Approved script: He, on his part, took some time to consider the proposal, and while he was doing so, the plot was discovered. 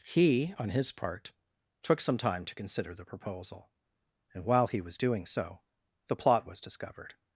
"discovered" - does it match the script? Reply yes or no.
yes